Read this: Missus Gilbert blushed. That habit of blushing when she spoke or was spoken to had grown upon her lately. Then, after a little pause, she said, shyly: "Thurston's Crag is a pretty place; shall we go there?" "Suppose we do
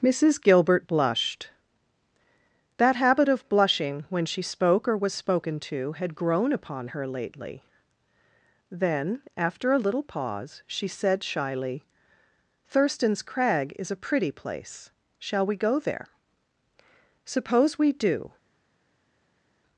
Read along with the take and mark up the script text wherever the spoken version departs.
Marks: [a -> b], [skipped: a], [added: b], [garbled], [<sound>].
Missus Gilbert blushed. That habit of blushing when she spoke or was spoken to had grown upon her lately. Then, after a little pause, she said, shyly: "Thurston's Crag is a pretty place; shall we go there?" "Suppose we do